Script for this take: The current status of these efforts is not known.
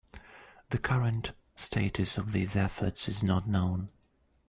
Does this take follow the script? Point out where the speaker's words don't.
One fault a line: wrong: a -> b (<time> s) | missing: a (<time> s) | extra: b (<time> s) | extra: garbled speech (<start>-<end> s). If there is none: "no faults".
no faults